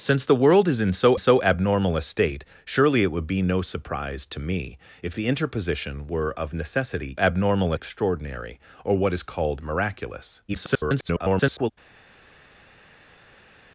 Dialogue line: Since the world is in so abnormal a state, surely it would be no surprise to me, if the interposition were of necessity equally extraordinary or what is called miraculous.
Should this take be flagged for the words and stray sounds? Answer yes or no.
yes